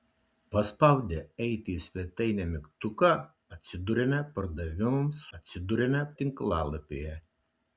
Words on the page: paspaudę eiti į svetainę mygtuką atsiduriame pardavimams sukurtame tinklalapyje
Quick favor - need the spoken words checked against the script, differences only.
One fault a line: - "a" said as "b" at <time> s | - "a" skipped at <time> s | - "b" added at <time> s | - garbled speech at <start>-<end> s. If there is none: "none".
- "sukurtame" said as "atsiduriame" at 5.4 s